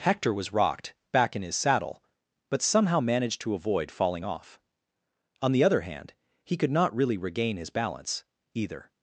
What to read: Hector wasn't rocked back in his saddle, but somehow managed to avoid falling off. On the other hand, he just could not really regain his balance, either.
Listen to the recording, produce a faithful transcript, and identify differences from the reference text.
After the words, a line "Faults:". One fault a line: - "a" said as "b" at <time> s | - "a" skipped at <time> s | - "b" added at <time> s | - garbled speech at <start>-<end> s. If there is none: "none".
Hector was rocked back in his saddle, but somehow managed to avoid falling off. On the other hand, he could not really regain his balance, either.
Faults:
- "wasn't" said as "was" at 0.3 s
- "just" skipped at 6.5 s